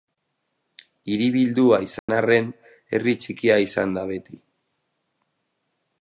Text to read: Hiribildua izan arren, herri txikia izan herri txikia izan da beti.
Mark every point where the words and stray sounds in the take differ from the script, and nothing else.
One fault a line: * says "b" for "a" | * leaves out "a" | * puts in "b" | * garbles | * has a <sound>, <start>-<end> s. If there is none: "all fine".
* has a dropout, 2.0-2.1 s
* leaves out "herri txikia izan"